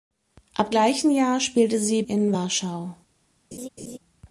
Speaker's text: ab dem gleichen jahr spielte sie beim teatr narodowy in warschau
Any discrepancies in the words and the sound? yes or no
yes